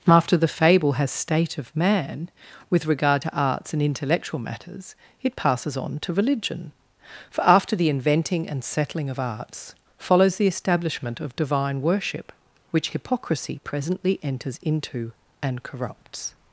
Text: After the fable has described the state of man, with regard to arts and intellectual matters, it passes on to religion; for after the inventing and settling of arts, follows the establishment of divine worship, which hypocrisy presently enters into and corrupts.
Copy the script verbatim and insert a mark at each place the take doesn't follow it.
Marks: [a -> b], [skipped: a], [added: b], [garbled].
After the fable has [skipped: described the] state of man, with regard to arts and intellectual matters, it passes on to religion; for after the inventing and settling of arts, follows the establishment of divine worship, which hypocrisy presently enters into and corrupts.